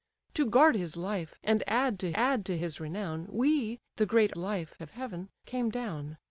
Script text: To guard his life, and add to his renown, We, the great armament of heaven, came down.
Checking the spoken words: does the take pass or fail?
fail